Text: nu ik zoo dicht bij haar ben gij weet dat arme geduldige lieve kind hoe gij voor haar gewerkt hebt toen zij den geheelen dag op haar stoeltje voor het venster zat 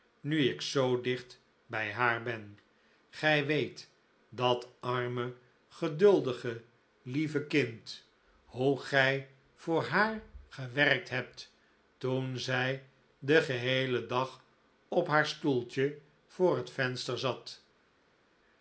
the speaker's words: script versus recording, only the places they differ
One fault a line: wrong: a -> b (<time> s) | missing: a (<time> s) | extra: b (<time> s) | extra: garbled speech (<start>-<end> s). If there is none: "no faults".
no faults